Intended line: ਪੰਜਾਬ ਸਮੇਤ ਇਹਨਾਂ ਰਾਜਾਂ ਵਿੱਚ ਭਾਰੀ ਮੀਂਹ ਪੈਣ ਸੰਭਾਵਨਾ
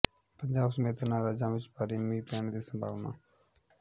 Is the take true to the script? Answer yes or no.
no